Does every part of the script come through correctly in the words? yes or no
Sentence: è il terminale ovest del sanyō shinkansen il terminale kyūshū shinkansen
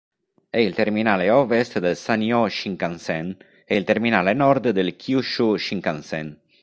no